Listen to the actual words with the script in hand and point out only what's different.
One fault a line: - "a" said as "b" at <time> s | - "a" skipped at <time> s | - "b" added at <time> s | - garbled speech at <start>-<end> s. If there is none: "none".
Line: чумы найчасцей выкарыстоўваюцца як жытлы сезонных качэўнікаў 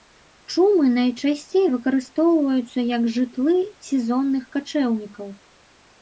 none